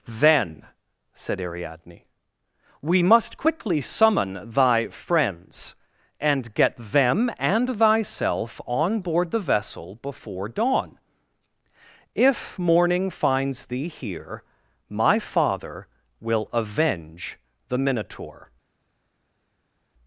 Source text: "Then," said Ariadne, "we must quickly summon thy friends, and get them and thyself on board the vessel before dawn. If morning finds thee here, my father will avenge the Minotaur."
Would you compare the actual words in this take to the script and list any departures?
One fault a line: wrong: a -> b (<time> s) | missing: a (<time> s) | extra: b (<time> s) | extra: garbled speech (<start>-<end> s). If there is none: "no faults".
no faults